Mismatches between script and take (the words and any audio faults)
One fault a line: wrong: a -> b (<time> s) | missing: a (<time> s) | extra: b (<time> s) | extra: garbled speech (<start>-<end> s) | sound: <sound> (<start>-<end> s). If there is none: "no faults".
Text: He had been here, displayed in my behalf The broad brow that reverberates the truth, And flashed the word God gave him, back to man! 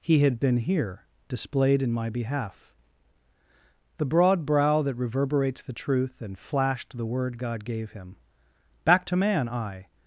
extra: I (9.5 s)